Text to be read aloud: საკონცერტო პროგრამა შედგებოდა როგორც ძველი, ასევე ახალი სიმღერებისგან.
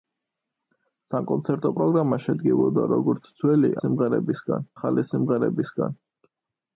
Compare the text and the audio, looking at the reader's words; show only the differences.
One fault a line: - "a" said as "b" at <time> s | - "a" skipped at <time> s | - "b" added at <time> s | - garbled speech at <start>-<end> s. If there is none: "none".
- "ასევე" said as "სიმღერებისგან" at 3.9 s